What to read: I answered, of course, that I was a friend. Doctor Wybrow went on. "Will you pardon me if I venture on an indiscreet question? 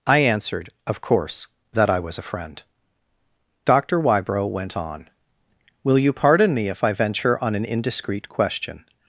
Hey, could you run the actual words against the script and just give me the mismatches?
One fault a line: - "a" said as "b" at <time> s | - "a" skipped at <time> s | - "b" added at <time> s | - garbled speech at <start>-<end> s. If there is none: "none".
none